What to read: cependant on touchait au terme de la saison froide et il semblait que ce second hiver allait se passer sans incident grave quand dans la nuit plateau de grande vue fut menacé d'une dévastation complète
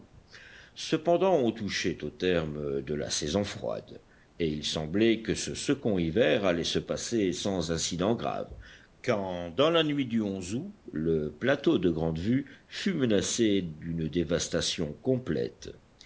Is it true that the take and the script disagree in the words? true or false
true